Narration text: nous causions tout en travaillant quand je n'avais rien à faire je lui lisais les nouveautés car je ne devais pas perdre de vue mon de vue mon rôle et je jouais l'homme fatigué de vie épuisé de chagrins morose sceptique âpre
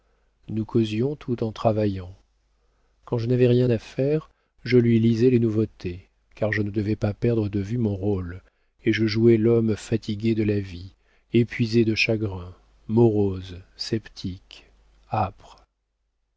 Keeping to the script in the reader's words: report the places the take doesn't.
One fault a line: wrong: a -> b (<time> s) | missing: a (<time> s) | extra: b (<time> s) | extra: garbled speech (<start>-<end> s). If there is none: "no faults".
missing: de vue mon (8.0 s)
extra: la (10.4 s)